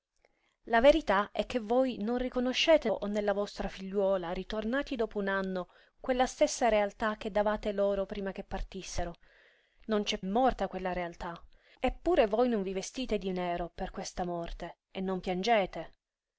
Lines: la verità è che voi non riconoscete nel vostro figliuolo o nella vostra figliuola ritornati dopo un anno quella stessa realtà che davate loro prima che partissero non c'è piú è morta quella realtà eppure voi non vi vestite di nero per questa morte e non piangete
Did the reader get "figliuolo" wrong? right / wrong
wrong